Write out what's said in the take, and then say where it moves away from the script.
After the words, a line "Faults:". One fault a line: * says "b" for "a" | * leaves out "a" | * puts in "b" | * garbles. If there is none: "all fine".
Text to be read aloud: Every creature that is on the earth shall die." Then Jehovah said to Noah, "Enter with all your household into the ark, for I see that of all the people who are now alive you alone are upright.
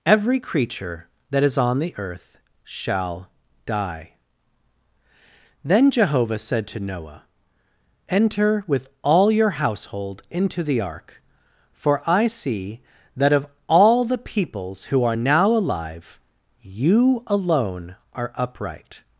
Every creature that is on the earth shall die." Then Jehovah said to Noah, "Enter with all your household into the ark, for I see that of all the peoples who are now alive you alone are upright.
Faults:
* says "peoples" for "people"